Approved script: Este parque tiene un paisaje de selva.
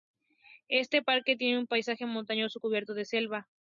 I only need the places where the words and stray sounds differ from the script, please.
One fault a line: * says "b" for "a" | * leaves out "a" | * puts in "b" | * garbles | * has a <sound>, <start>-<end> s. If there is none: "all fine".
* puts in "montañoso cubierto"